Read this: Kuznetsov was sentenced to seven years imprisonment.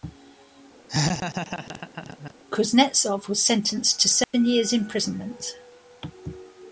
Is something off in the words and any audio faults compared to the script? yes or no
yes